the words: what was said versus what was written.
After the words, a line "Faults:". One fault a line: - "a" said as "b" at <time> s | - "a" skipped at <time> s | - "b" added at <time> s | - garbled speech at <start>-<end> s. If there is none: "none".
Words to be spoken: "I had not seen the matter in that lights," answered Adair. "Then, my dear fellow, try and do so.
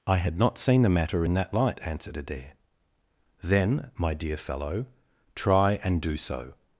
"I had not seen the matter in that light," answered Adair. "Then, my dear fellow, try and do so.
Faults:
- "lights" said as "light" at 1.5 s